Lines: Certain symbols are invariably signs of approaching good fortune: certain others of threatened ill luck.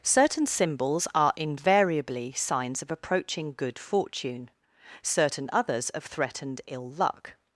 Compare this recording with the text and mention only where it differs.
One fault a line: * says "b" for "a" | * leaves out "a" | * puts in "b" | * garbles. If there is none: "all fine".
all fine